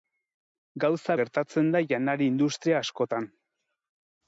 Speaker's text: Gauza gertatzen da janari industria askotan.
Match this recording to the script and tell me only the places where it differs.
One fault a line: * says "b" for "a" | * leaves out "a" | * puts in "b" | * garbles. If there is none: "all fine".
all fine